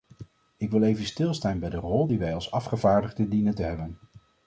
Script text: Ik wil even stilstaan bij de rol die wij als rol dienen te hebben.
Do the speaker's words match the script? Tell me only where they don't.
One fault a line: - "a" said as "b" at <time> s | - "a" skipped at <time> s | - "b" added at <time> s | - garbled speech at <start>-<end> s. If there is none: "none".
- "rol" said as "afgevaardigden" at 2.5 s